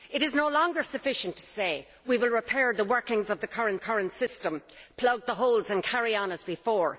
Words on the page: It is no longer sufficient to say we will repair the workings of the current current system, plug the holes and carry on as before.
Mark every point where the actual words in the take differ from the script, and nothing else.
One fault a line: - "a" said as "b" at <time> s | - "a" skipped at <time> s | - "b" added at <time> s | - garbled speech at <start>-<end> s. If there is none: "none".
none